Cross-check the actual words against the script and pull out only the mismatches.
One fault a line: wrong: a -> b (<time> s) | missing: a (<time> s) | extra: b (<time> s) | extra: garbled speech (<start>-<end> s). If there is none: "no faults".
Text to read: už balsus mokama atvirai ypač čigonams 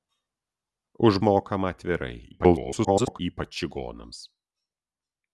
missing: balsus (1.2 s)
extra: garbled speech (2.3-3.2 s)